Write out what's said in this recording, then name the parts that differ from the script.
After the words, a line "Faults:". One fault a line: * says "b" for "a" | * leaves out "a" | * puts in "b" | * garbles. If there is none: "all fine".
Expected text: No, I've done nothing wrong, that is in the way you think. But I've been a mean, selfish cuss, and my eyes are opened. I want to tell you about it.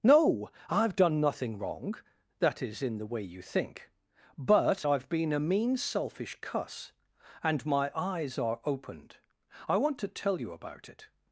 No, I've done nothing wrong, that is in the way you think. But I've been a mean, selfish cuss, and my eyes are opened. I want to tell you about it.
Faults:
all fine